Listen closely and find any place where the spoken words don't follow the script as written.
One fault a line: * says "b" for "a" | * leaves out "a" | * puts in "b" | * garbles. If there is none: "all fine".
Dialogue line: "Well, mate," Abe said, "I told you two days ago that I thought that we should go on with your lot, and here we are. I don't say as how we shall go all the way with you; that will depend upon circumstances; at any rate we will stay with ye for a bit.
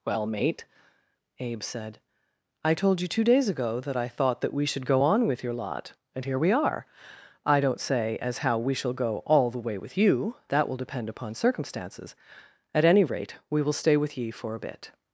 all fine